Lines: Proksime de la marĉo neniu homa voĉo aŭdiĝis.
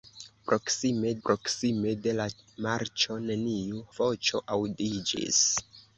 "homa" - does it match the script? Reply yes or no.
no